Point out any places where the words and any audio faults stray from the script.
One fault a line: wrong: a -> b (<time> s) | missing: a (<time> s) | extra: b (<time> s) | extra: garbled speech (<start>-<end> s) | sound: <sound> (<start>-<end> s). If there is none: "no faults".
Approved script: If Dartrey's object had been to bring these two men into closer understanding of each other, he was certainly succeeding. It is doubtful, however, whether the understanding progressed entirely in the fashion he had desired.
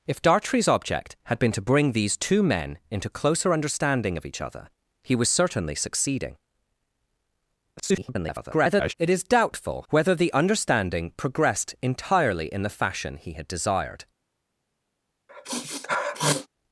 extra: garbled speech (7.8-8.9 s)
missing: however (9.9 s)
sound: sniff (15.3-16.5 s)